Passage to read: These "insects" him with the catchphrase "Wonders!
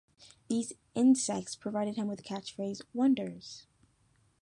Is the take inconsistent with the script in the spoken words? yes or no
yes